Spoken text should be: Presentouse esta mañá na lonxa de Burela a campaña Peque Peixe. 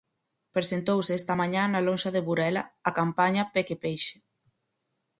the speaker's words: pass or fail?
pass